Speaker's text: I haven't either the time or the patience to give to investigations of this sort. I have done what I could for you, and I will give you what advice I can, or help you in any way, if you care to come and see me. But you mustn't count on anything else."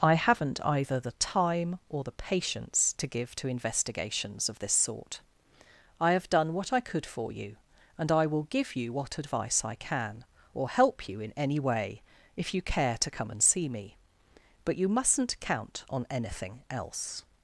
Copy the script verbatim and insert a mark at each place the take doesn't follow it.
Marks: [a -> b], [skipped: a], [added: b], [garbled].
I haven't either the time or the patience to give to investigations of this sort. I have done what I could for you, and I will give you what advice I can, or help you in any way, if you care to come and see me. But you mustn't count on anything else."